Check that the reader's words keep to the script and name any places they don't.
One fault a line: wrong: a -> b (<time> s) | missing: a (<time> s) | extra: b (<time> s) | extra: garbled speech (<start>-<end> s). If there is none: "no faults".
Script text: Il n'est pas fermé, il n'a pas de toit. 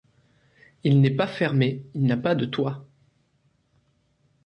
no faults